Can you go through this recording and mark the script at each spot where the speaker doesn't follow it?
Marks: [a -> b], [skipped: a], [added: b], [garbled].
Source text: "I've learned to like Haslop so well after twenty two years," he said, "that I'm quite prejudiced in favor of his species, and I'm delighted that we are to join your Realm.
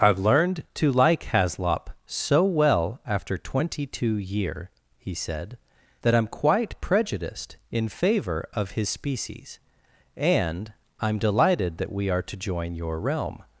"I've learned to like Haslop so well after twenty two [years," -> year] he said, "that I'm quite prejudiced in favor of his species, and I'm delighted that we are to join your Realm.